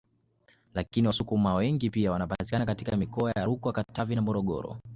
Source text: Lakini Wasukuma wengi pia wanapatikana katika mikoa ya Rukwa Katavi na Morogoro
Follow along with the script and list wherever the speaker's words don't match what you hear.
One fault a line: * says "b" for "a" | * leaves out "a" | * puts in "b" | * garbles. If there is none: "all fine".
all fine